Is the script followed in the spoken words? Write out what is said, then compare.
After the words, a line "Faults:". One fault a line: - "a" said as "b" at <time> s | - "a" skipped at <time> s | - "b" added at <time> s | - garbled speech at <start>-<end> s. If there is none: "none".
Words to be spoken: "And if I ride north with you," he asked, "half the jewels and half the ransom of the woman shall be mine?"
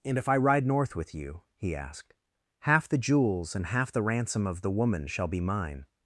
"And if I ride north with you," he asked, "half the jewels and half the ransom of the woman shall be mine?"
Faults:
none